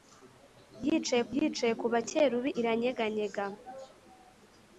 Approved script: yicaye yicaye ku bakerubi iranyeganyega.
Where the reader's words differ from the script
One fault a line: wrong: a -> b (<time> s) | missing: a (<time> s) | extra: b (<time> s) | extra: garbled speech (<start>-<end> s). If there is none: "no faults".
no faults